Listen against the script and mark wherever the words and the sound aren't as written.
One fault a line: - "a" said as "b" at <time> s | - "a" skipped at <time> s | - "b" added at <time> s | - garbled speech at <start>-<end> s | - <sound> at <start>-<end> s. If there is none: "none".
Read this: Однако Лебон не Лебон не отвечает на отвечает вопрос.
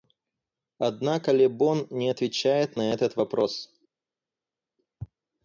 - "Лебон не" skipped at 2.1 s
- "отвечает" said as "этот" at 2.9 s